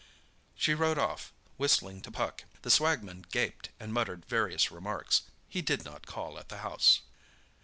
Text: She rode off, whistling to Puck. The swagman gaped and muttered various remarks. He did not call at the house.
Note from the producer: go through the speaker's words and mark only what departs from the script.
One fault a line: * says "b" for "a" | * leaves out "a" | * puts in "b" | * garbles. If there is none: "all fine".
all fine